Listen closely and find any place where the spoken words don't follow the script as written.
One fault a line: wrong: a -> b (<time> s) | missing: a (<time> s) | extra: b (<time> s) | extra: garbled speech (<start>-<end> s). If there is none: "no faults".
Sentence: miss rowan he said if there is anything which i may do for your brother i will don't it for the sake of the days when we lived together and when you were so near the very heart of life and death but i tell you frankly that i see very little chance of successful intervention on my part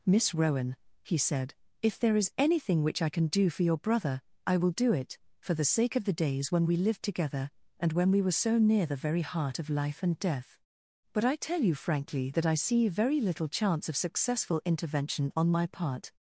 wrong: may -> can (3.1 s)
wrong: don't -> do (4.7 s)
wrong: you -> we (8.1 s)